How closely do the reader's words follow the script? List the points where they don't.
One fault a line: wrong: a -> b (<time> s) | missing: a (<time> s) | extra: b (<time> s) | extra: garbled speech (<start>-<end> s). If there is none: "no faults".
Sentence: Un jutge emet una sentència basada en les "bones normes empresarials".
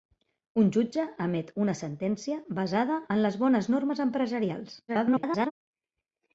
extra: garbled speech (4.9-5.5 s)